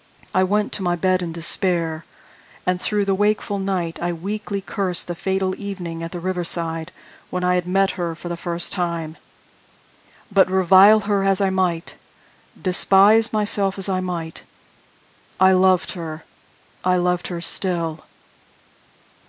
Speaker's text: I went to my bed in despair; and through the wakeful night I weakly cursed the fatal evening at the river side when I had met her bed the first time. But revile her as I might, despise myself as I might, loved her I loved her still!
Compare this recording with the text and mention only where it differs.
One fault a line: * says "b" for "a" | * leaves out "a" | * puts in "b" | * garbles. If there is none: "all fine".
* says "for" for "bed"
* puts in "I"